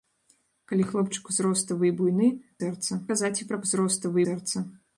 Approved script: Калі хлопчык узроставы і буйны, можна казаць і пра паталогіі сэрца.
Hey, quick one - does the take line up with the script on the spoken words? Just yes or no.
no